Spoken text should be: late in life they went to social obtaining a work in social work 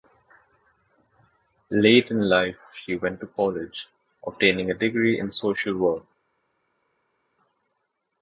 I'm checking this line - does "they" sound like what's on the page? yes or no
no